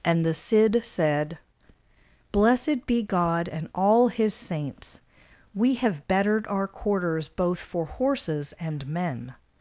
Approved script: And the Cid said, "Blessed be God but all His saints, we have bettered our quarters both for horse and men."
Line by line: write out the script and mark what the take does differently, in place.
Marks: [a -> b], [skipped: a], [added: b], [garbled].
And the Cid said, "Blessed be God [but -> and] all His saints, we have bettered our quarters both for [horse -> horses] and men."